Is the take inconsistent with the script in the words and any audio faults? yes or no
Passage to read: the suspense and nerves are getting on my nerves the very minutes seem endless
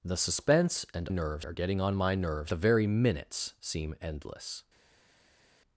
no